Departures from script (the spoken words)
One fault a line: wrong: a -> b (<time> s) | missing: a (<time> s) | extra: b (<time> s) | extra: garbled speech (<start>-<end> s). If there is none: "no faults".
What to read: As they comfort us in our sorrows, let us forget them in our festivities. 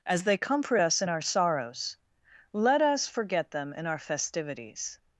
no faults